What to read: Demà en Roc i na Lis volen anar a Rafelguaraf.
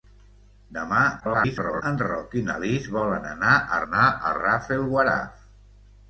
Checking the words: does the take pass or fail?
fail